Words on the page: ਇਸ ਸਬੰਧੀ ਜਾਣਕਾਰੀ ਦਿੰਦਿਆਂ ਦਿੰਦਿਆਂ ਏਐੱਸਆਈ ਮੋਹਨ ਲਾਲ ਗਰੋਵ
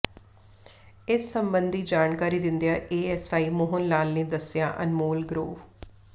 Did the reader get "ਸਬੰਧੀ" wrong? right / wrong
right